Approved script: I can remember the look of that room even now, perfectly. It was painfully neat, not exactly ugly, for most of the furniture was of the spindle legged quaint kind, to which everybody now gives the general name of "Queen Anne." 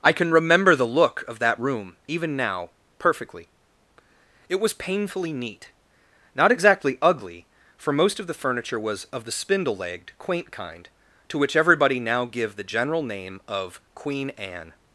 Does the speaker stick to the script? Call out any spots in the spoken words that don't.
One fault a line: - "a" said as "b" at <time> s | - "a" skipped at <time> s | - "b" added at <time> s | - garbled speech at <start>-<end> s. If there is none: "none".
- "gives" said as "give" at 12.2 s